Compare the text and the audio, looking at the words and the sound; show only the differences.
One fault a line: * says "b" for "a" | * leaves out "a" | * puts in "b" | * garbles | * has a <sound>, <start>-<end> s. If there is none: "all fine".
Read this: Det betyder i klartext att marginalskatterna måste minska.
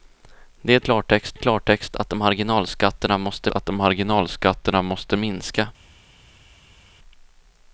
* says "klartext" for "betyder"
* puts in "att marginalskatterna måste"